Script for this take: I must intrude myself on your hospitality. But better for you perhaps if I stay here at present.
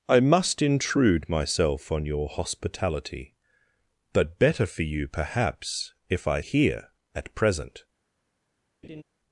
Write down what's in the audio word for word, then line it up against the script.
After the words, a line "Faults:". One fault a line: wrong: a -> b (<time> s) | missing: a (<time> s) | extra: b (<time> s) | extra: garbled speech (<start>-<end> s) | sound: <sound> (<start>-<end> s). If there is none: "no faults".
I must intrude myself on your hospitality. But better for you perhaps if I here at present.
Faults:
missing: stay (6.4 s)
sound: laugh (8.8-9.0 s)